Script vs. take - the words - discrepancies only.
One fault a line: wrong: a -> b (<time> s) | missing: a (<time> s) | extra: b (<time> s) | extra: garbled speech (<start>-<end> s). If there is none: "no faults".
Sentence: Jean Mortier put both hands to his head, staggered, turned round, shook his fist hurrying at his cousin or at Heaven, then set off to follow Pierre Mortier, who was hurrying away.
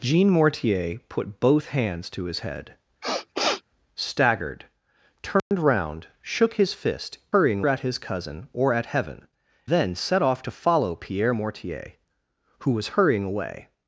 no faults